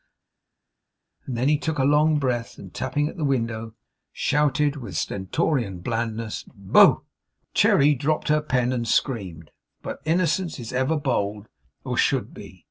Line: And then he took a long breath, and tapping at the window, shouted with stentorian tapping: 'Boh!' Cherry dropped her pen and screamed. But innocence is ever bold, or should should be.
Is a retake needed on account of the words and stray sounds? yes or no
yes